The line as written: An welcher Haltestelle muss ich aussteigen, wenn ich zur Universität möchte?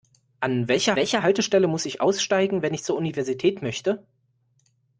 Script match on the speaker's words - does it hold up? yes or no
no